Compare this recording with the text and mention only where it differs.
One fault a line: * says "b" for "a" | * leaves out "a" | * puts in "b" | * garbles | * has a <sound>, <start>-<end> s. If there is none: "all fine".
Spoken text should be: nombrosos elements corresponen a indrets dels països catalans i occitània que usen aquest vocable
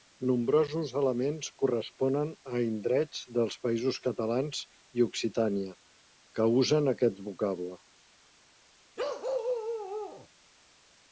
* has a bark, 9.0-10.3 s